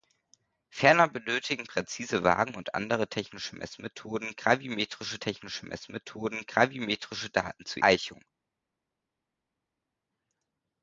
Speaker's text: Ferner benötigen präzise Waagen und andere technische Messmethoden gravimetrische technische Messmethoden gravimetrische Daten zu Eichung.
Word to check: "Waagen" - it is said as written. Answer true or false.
true